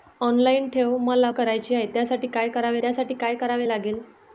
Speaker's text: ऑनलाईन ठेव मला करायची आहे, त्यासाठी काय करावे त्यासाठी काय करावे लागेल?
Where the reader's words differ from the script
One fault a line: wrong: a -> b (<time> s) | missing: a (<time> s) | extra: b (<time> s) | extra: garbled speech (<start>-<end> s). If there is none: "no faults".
no faults